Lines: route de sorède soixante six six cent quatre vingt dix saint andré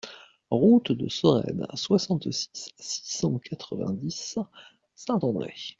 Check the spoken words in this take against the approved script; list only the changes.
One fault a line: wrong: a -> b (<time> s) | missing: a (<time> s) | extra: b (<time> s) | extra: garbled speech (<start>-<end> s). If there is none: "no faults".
no faults